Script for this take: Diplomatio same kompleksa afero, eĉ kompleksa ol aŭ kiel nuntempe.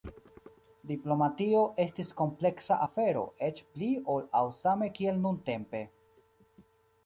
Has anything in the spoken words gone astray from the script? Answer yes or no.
yes